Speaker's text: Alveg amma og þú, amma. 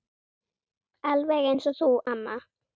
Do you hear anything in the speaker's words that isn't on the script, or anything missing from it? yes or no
yes